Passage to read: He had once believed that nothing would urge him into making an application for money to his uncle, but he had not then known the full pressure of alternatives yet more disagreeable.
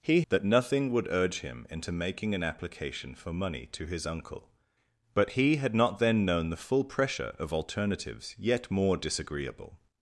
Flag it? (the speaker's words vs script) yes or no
yes